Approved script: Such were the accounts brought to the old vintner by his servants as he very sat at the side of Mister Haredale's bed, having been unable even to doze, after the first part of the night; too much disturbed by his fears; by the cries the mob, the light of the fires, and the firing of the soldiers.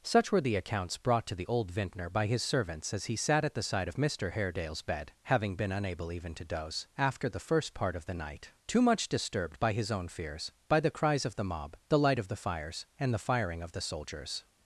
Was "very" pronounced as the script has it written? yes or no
no